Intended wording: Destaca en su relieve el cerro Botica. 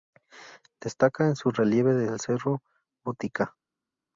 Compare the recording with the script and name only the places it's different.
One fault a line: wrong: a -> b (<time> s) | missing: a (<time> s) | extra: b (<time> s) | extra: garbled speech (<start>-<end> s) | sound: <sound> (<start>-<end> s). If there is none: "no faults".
no faults